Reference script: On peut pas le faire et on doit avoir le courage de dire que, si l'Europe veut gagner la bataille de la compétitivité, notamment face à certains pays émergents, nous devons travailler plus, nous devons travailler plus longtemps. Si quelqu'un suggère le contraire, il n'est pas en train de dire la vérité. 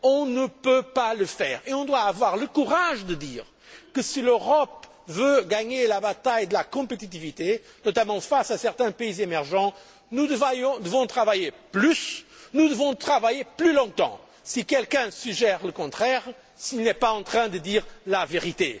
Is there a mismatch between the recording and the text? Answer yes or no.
yes